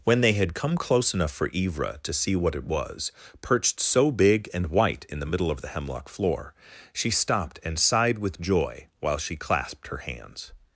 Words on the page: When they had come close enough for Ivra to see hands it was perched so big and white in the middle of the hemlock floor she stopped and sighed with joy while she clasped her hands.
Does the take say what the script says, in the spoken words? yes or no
no